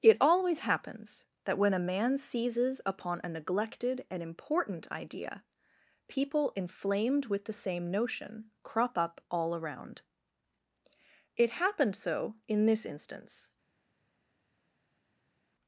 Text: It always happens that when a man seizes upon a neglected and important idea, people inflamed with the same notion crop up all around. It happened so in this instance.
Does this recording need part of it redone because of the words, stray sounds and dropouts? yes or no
no